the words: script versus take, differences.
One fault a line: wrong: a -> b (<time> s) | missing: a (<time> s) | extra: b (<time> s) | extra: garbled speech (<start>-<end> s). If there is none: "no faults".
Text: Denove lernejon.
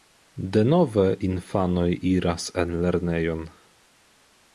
extra: infanoj iras en (1.3 s)